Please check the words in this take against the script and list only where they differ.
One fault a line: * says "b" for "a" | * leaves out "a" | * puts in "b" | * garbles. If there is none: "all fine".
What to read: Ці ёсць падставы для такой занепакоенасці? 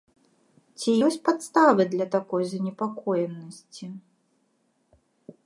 all fine